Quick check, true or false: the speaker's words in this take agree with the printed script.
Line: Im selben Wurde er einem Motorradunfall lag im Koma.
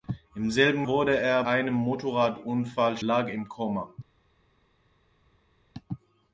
true